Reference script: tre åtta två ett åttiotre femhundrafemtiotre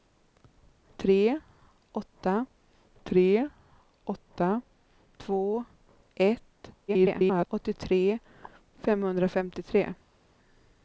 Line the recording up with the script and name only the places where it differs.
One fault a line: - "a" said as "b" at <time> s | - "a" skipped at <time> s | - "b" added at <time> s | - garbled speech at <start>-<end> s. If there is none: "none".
- "tre åtta" added at 3.0 s
- garbled speech at 6.9-7.5 s